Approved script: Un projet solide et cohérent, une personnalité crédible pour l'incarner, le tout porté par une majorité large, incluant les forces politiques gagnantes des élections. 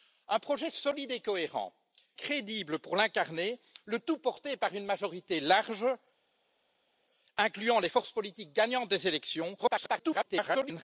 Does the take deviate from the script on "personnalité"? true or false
true